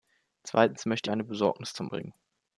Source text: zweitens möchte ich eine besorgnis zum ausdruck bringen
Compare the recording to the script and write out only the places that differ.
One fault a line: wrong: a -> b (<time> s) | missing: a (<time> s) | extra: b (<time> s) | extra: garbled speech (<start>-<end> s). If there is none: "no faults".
missing: ich (1.1 s)
missing: ausdruck (1.9 s)